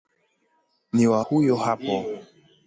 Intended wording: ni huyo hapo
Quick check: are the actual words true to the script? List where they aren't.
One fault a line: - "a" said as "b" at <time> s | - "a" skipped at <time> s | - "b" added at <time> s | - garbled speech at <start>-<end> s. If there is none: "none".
- "wa" added at 1.1 s